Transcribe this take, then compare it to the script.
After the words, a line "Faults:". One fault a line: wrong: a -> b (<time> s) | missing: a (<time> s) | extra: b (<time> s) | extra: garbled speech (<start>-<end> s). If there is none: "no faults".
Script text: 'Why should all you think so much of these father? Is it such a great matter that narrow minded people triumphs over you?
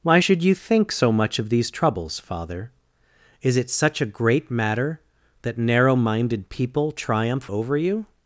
'Why should you think so much of these troubles, father? Is it such a great matter that narrow minded people triumph over you?
Faults:
missing: all (0.4 s)
extra: troubles (1.7 s)
wrong: triumphs -> triumph (6.9 s)